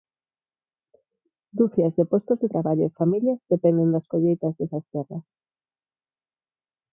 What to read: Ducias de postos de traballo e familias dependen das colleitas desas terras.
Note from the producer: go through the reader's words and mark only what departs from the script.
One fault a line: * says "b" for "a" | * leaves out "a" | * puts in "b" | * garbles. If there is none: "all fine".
all fine